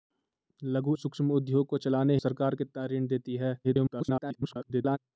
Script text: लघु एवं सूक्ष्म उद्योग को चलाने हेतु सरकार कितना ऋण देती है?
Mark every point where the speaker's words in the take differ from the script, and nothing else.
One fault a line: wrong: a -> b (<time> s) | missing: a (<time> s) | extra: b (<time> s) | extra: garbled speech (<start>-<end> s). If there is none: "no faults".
missing: एवं (0.9 s)
missing: हेतु (2.2 s)
extra: garbled speech (3.6-5.0 s)